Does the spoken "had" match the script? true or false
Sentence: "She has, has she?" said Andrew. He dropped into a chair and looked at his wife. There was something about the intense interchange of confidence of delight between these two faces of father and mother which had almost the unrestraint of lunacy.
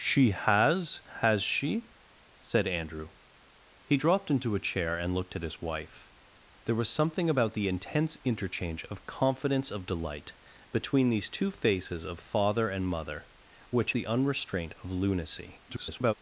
false